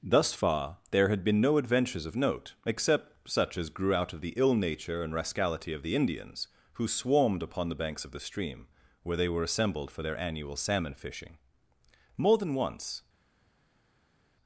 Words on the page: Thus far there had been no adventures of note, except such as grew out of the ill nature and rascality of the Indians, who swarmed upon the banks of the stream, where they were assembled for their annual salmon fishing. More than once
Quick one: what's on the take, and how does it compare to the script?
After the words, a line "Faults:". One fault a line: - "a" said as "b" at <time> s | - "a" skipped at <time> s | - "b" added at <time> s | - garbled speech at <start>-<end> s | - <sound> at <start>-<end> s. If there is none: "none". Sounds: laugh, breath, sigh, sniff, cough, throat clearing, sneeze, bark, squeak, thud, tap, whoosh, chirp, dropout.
Thus far there had been no adventures of note, except such as grew out of the ill nature and rascality of the Indians, who swarmed upon the banks of the stream, where they were assembled for their annual salmon fishing. More than once
Faults:
none